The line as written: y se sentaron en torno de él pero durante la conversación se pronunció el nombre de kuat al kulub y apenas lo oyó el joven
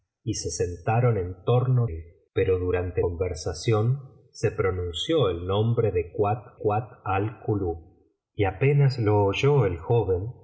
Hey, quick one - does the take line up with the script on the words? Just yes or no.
no